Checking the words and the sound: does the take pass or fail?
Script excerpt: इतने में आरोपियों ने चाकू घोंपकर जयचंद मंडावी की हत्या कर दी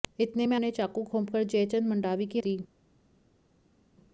fail